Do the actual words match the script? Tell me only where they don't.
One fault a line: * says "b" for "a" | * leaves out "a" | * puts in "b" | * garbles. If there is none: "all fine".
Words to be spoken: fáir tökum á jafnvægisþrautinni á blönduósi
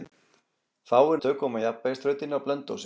all fine